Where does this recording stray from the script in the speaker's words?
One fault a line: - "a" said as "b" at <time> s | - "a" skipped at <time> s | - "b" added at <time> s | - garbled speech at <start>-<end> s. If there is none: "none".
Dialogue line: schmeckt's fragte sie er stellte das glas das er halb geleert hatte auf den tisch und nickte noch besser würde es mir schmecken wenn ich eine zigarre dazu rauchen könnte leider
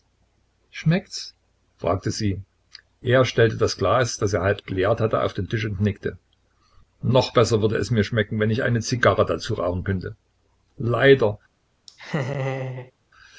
none